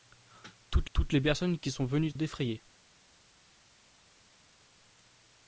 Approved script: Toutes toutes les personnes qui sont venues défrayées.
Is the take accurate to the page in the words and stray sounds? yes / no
yes